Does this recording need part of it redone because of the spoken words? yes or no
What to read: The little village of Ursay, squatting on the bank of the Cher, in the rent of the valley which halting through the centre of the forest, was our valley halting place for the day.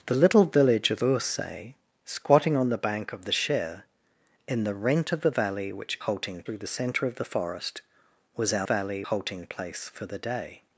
no